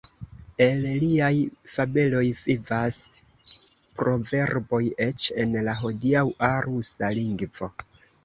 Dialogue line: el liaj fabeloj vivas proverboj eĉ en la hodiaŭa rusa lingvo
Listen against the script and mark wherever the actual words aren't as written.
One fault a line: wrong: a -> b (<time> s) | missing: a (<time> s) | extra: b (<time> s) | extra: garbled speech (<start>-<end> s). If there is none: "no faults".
no faults